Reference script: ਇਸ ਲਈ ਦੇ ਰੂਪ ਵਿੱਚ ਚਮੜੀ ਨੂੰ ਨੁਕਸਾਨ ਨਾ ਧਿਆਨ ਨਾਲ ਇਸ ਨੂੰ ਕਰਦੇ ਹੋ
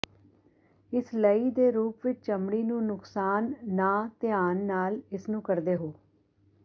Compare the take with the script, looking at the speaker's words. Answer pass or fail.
pass